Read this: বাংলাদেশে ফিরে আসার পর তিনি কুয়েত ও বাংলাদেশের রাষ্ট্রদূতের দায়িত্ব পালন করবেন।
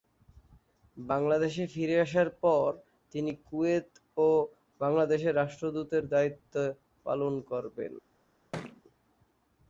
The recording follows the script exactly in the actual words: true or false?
true